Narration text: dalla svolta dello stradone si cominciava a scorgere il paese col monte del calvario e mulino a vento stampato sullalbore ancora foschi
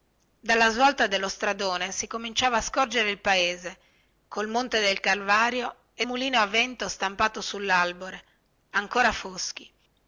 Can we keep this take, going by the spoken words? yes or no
yes